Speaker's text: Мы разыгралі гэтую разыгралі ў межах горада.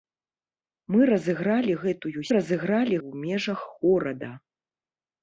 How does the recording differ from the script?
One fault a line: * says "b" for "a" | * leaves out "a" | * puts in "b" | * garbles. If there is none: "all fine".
all fine